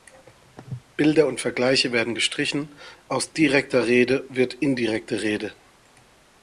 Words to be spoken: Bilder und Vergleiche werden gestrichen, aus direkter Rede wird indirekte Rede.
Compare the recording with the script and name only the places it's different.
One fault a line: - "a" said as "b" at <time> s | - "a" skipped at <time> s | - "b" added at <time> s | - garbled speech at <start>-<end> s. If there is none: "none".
none